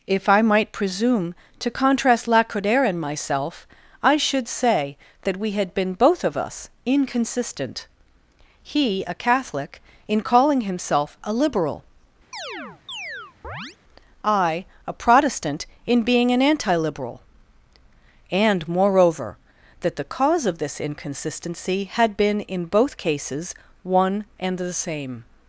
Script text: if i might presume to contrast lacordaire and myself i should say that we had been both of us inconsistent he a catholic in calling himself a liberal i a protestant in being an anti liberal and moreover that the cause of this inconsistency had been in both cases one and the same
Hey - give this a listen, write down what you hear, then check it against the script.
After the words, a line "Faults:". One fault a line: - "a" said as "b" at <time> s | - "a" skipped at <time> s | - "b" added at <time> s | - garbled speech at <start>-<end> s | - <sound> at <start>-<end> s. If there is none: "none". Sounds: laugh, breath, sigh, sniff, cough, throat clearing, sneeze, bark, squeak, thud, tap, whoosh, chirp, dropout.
if i might presume to contrast lacordaire and myself i should say that we had been both of us inconsistent he a catholic in calling himself a liberal i a protestant in being an anti liberal and moreover that the cause of this inconsistency had been in both cases one and the same
Faults:
- chirp at 12.3-13.8 s